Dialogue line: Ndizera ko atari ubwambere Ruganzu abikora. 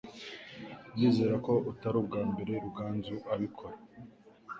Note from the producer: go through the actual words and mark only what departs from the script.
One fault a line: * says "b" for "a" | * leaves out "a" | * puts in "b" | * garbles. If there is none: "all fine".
all fine